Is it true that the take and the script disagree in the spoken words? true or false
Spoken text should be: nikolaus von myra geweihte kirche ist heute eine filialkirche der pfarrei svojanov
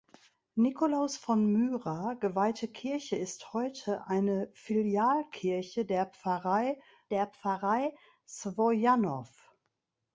true